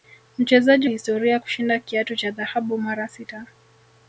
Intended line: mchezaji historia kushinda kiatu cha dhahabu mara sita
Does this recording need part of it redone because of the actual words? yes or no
no